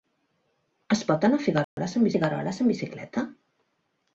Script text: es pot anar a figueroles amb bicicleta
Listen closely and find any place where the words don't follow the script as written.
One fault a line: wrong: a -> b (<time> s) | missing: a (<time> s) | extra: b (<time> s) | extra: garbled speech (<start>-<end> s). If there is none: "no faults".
extra: figueroles amb (2.1 s)